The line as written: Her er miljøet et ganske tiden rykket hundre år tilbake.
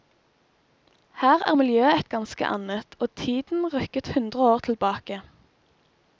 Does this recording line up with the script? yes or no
no